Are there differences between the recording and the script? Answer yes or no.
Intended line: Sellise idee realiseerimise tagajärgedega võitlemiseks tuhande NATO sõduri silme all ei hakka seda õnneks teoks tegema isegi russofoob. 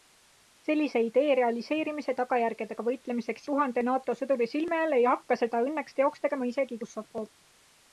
no